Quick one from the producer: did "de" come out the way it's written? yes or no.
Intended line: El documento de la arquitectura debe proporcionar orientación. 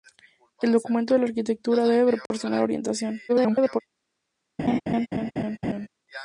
yes